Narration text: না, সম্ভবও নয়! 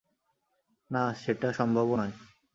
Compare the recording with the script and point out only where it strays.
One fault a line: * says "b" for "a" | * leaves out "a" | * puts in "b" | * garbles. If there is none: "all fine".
* puts in "সেটা"